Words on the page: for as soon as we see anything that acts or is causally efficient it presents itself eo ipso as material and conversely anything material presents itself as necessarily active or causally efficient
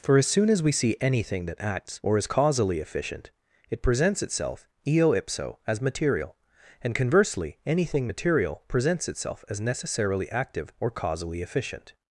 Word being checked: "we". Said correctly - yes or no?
yes